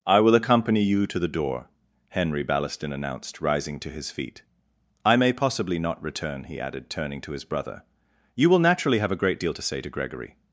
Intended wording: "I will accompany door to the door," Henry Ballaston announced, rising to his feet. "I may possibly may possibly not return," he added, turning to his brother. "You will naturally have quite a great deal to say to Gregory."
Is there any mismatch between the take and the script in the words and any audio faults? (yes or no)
yes